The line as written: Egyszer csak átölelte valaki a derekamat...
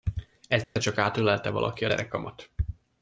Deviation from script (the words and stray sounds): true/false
true